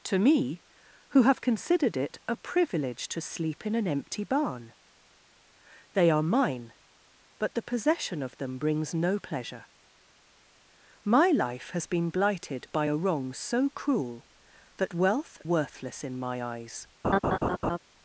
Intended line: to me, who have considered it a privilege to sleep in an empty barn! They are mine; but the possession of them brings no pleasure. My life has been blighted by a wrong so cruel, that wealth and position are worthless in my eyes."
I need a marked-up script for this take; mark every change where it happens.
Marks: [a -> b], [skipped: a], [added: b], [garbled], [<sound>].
to me, who have considered it a privilege to sleep in an empty barn! They are mine; but the possession of them brings no pleasure. My life has been blighted by a wrong so cruel, that wealth [skipped: and position are] worthless in my eyes." [laugh]